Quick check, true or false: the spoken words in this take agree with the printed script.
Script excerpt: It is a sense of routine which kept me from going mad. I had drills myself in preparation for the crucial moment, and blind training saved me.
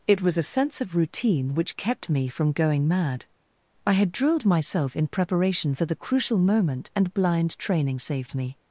false